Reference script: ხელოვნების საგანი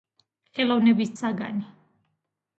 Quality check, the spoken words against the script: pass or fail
pass